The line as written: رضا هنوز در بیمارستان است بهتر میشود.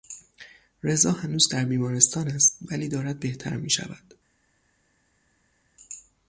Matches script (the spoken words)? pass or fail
fail